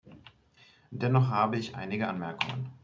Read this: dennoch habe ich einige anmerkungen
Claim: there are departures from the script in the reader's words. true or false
false